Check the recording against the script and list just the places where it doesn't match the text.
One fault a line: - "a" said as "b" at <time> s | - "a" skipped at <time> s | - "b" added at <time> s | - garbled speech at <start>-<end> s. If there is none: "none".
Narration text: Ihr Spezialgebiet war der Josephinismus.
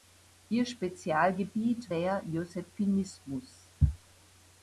- "war" skipped at 1.9 s